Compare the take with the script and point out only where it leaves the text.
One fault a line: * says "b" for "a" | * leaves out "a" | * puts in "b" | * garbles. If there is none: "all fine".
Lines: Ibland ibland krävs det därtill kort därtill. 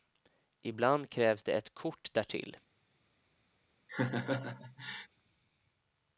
* leaves out "ibland"
* says "ett" for "därtill"